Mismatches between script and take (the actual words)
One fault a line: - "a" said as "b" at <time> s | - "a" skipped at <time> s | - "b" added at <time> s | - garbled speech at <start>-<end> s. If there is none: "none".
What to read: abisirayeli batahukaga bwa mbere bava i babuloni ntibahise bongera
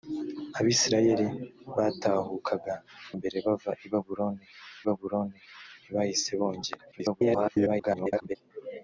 - "bwa" skipped at 2.8 s
- "babuloni" added at 4.9 s
- garbled speech at 6.9-8.4 s